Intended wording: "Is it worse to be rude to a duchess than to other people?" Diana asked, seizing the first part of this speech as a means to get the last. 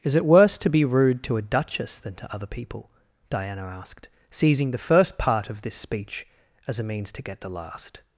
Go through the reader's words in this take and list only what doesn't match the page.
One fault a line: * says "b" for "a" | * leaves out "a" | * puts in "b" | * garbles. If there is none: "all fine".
all fine